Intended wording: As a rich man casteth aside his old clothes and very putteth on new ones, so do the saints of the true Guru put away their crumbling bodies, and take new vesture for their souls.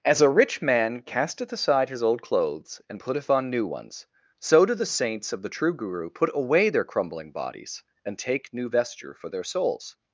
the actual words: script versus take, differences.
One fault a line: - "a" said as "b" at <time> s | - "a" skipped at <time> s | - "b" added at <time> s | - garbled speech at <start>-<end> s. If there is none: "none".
- "very" skipped at 3.0 s